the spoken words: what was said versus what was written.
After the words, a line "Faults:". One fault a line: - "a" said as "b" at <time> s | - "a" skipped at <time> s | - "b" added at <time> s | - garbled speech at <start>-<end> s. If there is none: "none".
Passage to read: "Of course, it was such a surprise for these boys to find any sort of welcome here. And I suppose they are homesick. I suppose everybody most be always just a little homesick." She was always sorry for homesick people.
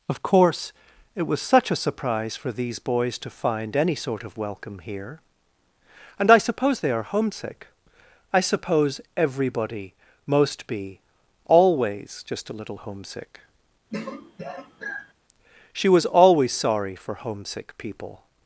"Of course, it was such a surprise for these boys to find any sort of welcome here. And I suppose they are homesick. I suppose everybody most be always just a little homesick." She was always sorry for homesick people.
Faults:
none